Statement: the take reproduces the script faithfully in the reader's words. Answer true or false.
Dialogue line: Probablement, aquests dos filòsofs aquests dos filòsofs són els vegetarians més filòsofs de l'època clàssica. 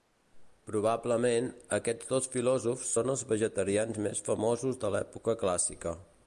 false